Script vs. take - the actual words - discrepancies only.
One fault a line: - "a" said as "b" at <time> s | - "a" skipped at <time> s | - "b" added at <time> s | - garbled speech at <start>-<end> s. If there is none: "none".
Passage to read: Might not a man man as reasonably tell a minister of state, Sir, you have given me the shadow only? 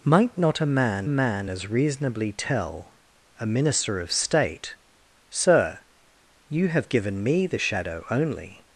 none